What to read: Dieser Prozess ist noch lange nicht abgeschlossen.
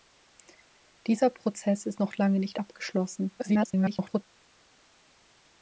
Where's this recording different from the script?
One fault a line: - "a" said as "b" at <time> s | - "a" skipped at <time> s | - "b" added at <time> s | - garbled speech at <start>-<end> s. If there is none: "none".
- garbled speech at 3.4-4.2 s